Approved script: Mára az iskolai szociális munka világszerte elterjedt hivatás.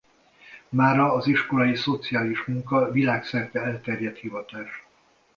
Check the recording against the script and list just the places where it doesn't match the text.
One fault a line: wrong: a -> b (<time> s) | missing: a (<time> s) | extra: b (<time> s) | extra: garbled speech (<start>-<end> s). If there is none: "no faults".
no faults